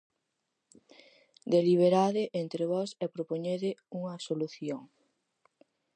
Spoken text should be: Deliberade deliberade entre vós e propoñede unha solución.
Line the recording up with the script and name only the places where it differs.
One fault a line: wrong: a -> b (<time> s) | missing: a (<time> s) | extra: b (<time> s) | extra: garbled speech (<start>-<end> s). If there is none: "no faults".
missing: deliberade (2.2 s)